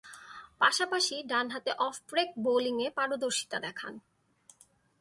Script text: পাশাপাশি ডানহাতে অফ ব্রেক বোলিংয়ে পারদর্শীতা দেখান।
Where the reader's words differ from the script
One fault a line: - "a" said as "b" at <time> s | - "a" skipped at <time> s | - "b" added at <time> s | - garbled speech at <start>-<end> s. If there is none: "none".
none